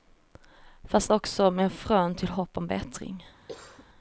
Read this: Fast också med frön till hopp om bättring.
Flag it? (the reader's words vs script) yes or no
no